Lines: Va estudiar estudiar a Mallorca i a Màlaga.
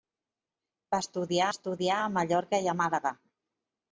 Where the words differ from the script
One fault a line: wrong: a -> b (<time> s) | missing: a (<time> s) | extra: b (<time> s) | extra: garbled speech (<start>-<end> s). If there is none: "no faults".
no faults